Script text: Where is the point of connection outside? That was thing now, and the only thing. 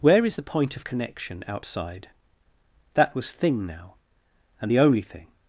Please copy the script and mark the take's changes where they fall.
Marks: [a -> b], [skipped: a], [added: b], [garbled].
Where is the point of connection outside? That was thing now, and the only thing.